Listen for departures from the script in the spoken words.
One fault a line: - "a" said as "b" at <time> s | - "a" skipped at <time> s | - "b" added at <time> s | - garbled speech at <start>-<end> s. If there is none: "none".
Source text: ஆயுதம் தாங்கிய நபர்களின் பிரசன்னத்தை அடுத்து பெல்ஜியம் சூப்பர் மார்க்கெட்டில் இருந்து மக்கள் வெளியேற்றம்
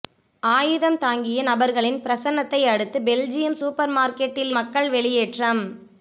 - "இருந்து" skipped at 4.5 s